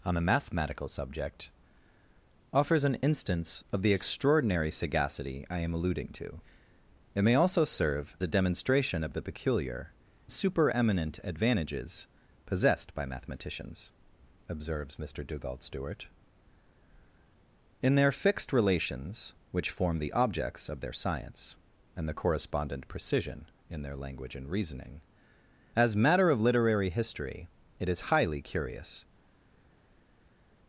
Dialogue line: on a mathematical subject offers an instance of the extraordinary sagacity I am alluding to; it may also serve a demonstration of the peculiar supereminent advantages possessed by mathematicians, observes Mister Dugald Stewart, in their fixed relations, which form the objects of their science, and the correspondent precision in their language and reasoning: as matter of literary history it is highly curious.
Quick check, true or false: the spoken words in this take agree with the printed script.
true